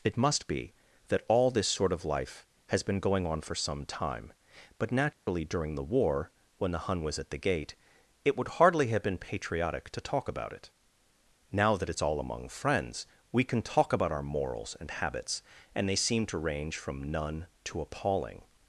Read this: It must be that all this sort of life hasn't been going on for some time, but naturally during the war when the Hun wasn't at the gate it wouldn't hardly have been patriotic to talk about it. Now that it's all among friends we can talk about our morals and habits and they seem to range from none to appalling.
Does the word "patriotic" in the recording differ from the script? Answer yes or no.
no